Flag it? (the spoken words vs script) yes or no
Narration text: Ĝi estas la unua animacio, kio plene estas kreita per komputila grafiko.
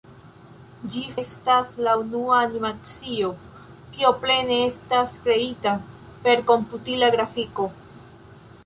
no